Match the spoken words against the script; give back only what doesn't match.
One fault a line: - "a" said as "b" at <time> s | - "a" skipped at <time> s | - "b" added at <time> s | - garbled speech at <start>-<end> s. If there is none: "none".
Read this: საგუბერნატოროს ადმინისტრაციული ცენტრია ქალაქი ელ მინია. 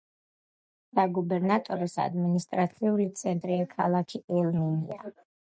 none